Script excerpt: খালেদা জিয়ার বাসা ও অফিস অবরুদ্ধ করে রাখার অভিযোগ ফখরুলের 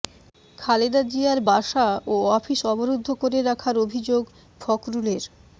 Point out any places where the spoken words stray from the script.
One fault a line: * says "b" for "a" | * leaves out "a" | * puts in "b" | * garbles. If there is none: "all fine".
all fine